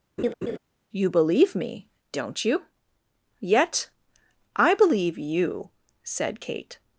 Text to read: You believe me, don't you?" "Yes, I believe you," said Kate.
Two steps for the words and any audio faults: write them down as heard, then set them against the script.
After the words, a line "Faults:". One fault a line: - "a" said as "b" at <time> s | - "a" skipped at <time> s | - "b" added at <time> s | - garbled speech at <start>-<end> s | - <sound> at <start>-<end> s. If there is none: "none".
You believe me, don't you?" "Yet, I believe you," said Kate.
Faults:
- laugh at 0.2-0.6 s
- "Yes" said as "Yet" at 3.4 s